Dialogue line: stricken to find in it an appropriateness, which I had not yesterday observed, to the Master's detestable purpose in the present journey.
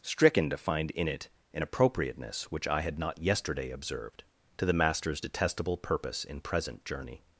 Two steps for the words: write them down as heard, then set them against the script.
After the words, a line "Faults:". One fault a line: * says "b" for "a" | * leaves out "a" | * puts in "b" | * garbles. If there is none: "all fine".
stricken to find in it an appropriateness, which I had not yesterday observed, to the Master's detestable purpose in present journey.
Faults:
* leaves out "the"